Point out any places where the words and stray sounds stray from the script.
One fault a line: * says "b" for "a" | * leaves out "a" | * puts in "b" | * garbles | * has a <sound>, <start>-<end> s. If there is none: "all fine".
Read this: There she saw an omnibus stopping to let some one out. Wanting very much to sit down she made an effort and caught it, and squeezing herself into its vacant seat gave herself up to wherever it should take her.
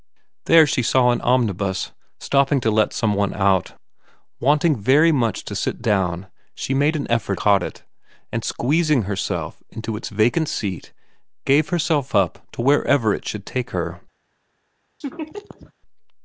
* leaves out "and"
* has a laugh, 15.0-15.7 s